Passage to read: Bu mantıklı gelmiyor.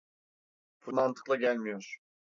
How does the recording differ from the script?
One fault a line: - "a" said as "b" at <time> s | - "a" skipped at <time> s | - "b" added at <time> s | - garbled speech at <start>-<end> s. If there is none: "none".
none